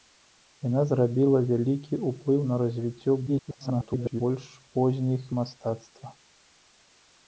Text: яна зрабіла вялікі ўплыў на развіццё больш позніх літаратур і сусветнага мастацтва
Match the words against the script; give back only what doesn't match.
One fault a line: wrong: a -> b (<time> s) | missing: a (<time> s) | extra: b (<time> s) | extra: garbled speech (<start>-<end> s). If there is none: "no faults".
extra: garbled speech (3.3-4.2 s)
missing: літаратур і сусветнага (5.2 s)